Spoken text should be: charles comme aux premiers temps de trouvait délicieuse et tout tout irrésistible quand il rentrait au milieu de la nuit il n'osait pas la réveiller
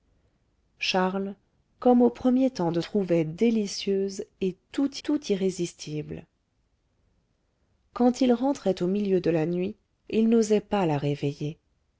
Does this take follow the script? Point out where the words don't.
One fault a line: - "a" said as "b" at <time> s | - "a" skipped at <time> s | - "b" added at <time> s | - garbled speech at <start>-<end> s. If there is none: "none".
none